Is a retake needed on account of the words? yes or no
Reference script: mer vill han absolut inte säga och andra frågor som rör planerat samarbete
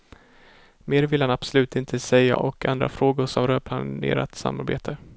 no